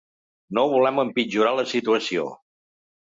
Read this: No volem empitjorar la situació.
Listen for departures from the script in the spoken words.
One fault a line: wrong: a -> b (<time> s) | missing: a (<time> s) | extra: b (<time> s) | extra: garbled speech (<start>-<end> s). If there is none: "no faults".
no faults